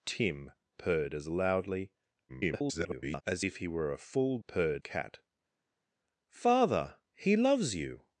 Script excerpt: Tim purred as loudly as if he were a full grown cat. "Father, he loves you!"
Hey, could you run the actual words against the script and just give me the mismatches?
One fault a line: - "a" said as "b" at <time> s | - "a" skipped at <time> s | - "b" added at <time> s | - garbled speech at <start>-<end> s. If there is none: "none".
- garbled speech at 2.3-3.2 s
- "grown" said as "purred" at 4.5 s